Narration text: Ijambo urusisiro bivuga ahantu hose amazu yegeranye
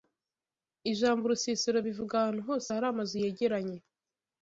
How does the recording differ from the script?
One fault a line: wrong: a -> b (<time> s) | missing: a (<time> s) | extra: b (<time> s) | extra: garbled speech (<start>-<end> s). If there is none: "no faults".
extra: hari (2.7 s)